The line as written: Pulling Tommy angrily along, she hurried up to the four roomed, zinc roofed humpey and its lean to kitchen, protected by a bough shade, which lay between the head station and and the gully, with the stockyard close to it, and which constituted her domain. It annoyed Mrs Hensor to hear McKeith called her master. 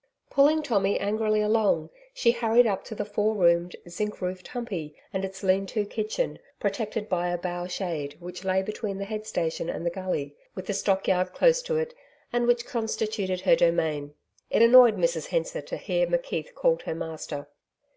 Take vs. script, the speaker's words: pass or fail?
fail